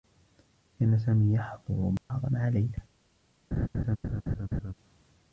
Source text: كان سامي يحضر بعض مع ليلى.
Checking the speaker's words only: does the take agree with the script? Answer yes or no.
yes